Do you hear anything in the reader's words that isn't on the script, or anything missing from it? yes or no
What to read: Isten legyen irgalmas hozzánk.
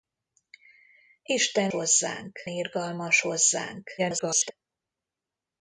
yes